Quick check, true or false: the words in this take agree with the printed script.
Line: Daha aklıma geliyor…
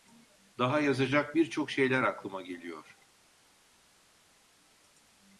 false